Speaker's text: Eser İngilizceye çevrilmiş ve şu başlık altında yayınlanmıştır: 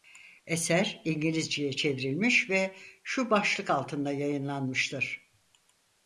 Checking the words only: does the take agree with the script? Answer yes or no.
yes